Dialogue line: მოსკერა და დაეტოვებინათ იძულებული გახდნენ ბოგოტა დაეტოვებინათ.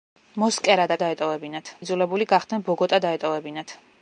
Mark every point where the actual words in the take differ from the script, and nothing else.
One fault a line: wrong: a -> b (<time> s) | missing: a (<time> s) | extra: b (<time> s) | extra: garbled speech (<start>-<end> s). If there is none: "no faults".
no faults